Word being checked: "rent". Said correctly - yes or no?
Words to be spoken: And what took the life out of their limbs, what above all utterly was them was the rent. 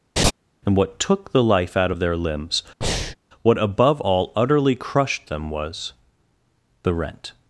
yes